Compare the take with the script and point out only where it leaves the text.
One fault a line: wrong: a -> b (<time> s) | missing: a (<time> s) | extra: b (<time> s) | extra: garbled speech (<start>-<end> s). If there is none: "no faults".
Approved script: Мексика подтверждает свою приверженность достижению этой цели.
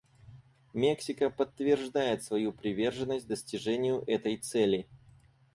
no faults